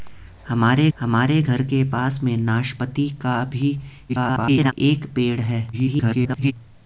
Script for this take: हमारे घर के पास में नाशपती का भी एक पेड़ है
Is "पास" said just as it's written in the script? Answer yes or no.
yes